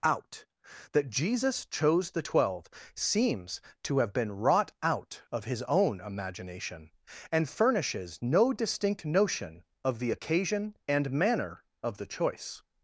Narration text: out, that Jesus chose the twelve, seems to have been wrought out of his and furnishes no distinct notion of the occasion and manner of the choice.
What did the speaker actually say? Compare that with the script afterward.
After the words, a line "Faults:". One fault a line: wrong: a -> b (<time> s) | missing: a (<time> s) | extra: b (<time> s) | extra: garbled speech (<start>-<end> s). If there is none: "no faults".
out, that Jesus chose the twelve, seems to have been wrought out of his own imagination, and furnishes no distinct notion of the occasion and manner of the choice.
Faults:
extra: own imagination (5.6 s)